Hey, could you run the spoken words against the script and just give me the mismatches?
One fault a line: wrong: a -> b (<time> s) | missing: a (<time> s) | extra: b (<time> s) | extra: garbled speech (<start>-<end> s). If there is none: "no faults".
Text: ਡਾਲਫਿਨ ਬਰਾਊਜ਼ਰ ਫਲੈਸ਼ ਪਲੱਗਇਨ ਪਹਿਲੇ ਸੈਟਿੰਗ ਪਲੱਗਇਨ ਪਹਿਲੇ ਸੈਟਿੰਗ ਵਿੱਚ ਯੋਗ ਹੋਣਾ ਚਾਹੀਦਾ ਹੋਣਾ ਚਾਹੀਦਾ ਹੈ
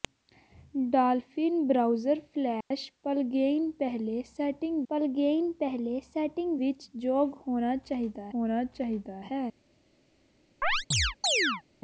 no faults